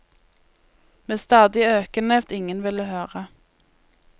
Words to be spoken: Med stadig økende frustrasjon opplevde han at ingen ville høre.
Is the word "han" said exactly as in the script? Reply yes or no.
no